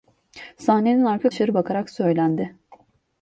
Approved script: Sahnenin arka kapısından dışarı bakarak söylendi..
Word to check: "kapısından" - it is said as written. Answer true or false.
false